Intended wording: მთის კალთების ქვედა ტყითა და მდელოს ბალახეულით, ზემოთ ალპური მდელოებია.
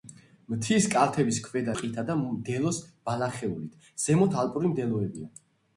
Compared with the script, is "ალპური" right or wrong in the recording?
right